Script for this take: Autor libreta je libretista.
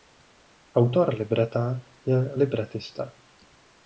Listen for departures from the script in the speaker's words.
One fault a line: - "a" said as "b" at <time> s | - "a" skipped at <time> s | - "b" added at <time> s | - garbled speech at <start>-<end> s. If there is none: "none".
none